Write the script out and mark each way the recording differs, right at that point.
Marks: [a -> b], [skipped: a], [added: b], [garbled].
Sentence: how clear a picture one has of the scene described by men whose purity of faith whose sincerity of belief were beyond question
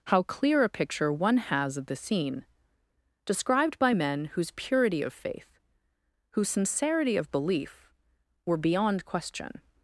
how clear a picture one has of the scene described by men whose purity of faith whose sincerity of belief were beyond question